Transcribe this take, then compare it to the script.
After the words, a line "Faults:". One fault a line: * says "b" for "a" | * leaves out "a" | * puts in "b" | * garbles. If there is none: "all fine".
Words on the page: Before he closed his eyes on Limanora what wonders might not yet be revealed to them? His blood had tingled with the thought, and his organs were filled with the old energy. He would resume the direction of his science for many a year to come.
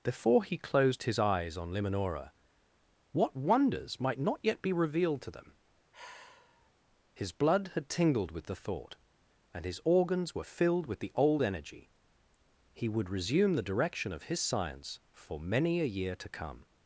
Before he closed his eyes on Limanora what wonders might not yet be revealed to them? His blood had tingled with the thought, and his organs were filled with the old energy. He would resume the direction of his science for many a year to come.
Faults:
all fine